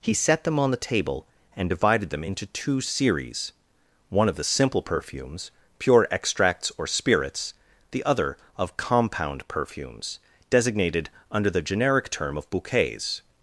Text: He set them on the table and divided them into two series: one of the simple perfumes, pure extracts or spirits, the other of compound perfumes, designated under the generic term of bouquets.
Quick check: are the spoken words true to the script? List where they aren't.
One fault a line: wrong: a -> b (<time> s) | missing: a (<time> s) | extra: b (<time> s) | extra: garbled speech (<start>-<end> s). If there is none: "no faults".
no faults